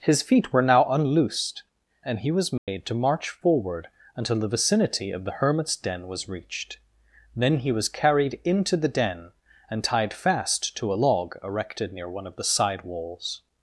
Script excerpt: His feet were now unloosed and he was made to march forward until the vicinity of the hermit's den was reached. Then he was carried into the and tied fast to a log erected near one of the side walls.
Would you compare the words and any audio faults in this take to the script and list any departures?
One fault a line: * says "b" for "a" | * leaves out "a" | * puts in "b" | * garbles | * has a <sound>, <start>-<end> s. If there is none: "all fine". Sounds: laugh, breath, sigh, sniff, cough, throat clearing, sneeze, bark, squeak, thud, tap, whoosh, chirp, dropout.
* has a dropout, 2.6-2.7 s
* puts in "den"